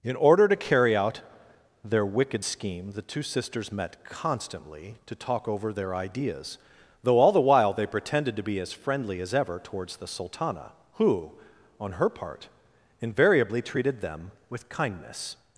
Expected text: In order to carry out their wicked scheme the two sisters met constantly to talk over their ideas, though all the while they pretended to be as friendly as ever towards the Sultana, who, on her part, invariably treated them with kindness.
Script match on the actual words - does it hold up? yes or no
yes